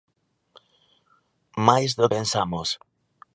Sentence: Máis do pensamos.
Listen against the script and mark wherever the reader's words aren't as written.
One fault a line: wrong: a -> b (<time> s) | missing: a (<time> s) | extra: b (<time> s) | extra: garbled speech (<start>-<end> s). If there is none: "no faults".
no faults